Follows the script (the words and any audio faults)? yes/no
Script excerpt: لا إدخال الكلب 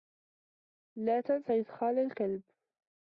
no